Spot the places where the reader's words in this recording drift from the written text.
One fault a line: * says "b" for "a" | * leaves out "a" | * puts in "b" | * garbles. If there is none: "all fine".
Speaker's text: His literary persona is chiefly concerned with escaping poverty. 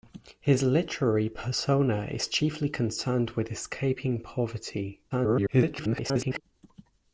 * garbles